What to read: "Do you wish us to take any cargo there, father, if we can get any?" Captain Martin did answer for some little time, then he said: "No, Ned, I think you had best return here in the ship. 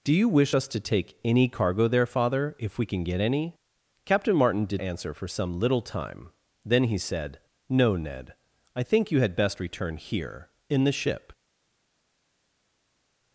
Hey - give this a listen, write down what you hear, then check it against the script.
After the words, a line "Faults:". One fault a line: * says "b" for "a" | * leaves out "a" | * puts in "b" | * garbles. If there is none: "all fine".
"Do you wish us to take any cargo there, father, if we can get any?" Captain Martin did answer for some little time, then he said: "No, Ned, I think you had best return here in the ship.
Faults:
all fine